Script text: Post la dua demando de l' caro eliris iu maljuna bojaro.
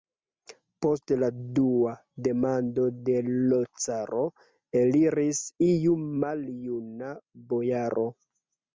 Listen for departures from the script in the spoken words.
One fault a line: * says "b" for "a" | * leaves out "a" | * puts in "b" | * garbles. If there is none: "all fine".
all fine